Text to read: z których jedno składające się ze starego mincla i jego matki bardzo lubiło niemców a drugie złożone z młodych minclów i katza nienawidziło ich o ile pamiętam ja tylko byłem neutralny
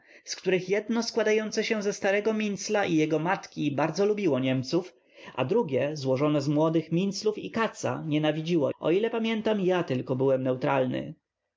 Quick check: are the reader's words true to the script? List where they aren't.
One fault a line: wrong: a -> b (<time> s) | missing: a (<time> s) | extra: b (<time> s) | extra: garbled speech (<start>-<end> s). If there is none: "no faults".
missing: ich (8.7 s)